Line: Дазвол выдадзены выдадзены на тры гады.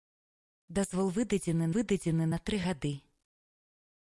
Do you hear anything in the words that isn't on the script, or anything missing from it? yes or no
no